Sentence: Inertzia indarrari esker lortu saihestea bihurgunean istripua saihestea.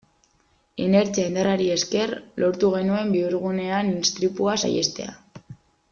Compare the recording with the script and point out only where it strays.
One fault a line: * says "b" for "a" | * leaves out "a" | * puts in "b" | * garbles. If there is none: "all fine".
* says "genuen" for "saihestea"